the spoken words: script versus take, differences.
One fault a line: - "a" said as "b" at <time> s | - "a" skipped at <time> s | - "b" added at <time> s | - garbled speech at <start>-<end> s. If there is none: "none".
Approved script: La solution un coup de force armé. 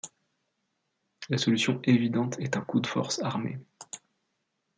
- "évidente est" added at 1.8 s